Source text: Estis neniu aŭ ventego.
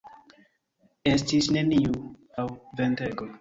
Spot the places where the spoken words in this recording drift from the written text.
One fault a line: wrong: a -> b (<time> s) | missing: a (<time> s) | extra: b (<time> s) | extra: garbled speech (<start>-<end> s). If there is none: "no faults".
no faults